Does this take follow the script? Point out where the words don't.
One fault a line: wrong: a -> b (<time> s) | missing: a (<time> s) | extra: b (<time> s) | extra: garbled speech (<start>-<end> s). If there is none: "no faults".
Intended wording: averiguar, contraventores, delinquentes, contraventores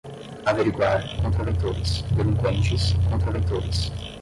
no faults